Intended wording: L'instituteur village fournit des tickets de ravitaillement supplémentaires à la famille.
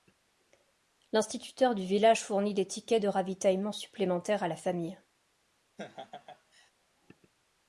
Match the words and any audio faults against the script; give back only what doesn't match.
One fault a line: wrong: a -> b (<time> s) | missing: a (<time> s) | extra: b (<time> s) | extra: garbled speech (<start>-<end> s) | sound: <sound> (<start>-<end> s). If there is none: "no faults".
extra: du (1.8 s)
sound: laugh (5.8-6.7 s)